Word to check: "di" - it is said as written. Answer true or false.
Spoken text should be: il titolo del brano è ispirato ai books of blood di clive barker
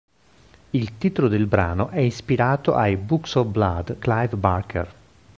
false